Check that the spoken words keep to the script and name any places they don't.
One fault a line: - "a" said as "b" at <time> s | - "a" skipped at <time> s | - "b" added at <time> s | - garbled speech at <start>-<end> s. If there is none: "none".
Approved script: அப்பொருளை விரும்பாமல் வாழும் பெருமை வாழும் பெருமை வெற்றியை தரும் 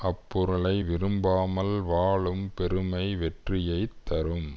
- "வாழும் பெருமை" skipped at 3.1 s